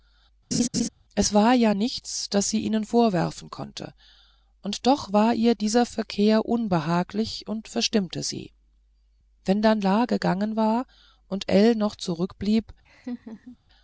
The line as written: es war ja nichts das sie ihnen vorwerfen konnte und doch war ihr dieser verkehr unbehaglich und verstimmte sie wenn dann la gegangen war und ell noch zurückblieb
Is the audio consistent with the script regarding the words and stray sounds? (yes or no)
no